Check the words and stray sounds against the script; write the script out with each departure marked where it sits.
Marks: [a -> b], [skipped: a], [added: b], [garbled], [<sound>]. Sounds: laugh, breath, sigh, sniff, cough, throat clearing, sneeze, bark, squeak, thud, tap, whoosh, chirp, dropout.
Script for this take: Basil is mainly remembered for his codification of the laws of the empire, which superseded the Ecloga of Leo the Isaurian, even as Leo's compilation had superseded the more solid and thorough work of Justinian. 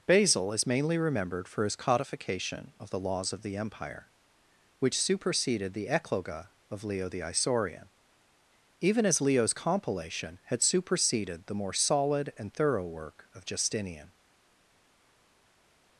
Basil is mainly remembered for his codification of the laws of the empire, which superseded the Ecloga of Leo the Isaurian, even as Leo's compilation had superseded the more solid and thorough work of Justinian.